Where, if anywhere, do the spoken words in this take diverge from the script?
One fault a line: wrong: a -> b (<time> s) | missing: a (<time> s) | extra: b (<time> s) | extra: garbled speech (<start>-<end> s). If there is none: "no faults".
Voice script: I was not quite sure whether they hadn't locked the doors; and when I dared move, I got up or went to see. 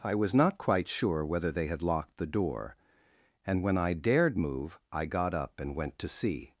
wrong: hadn't -> had (1.7 s)
wrong: doors -> door (2.2 s)
wrong: or -> and (5.6 s)